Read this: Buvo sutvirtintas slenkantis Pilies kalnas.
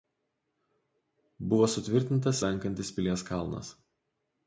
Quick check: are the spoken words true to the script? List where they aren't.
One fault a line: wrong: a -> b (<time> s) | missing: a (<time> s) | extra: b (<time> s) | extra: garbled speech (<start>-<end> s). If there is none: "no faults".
no faults